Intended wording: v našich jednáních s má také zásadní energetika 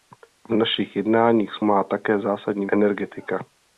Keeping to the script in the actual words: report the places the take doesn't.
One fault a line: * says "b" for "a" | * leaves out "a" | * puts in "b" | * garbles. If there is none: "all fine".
all fine